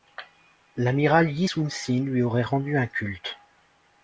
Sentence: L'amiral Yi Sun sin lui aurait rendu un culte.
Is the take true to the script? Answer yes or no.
yes